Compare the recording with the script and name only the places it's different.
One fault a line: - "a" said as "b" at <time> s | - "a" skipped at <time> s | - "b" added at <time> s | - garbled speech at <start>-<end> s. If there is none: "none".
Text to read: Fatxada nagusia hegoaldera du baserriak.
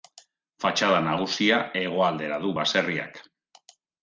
none